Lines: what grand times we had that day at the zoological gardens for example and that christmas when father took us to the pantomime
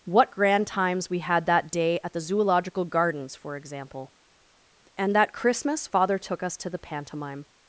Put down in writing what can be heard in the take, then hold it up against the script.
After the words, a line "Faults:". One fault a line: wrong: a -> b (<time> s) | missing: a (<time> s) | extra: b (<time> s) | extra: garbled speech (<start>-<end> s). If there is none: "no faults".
what grand times we had that day at the zoological gardens for example and that christmas father took us to the pantomime
Faults:
missing: when (5.9 s)